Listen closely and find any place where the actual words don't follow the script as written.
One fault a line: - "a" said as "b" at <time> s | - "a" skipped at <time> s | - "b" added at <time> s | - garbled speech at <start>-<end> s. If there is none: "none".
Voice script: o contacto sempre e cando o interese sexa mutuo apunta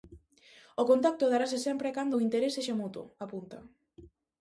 - "darase" added at 1.3 s